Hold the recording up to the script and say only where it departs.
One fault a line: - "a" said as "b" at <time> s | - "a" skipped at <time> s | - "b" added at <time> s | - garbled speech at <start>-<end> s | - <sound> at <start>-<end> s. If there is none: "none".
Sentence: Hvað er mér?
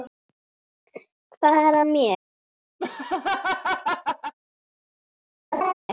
- laugh at 2.8-4.3 s
- laugh at 5.5-5.7 s